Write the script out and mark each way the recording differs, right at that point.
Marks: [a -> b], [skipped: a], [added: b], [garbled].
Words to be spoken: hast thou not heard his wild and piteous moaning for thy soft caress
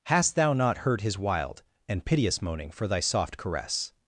hast thou not heard his wild and piteous moaning for thy soft caress